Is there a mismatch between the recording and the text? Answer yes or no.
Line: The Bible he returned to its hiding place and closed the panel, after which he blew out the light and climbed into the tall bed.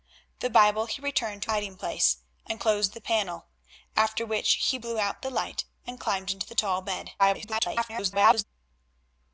yes